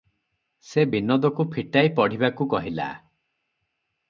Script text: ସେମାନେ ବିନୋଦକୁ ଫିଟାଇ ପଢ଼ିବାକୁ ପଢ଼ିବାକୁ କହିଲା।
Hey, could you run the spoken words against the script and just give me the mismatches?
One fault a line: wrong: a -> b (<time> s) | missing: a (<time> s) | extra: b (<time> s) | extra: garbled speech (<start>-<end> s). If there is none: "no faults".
wrong: ସେମାନେ -> ସେ (0.6 s)
missing: ପଢ଼ିବାକୁ (2.5 s)